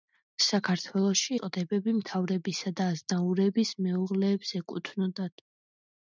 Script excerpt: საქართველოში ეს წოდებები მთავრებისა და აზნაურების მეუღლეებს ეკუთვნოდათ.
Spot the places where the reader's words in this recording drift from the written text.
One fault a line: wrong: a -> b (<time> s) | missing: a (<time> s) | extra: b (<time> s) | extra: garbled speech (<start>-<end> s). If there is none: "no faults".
missing: ეს (1.4 s)